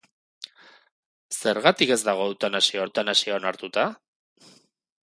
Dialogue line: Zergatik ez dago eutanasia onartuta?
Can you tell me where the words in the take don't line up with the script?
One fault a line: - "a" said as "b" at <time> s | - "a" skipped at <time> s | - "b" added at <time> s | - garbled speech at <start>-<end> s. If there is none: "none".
- "eutanasia" added at 2.9 s